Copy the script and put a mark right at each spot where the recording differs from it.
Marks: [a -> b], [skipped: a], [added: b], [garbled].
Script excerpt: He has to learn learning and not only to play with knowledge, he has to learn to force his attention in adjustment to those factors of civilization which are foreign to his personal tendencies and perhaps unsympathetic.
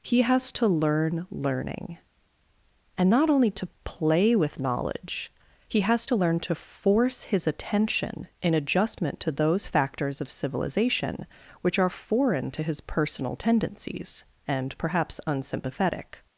He has to learn learning and not only to play with knowledge, he has to learn to force his attention in adjustment to those factors of civilization which are foreign to his personal tendencies and perhaps unsympathetic.